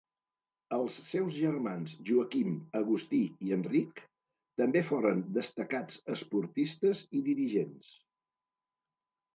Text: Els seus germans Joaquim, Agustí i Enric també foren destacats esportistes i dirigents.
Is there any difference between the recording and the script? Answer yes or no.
no